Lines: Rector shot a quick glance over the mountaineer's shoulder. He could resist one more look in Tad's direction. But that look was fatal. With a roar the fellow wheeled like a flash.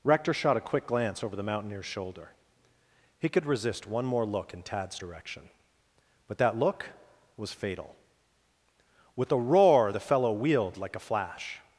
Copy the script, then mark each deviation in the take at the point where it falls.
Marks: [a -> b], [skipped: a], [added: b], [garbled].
Rector shot a quick glance over the mountaineer's shoulder. He could resist one more look in Tad's direction. But that look was fatal. With a roar the fellow wheeled like a flash.